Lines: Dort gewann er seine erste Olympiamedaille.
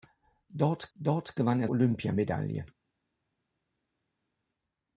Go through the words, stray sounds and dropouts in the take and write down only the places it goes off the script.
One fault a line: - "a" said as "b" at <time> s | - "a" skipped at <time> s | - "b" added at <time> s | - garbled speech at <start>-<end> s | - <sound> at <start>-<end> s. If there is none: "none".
- "dort" added at 1.0 s
- "seine erste" skipped at 1.7 s